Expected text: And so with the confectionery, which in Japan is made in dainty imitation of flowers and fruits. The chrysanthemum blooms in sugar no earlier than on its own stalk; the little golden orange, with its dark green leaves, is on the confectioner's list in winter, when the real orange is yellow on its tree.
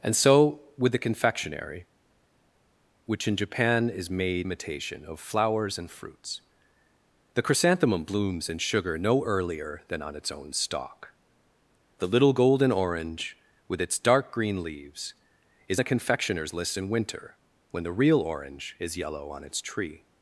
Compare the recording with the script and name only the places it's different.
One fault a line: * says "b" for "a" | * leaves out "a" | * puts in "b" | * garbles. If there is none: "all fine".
* leaves out "in dainty"
* leaves out "on"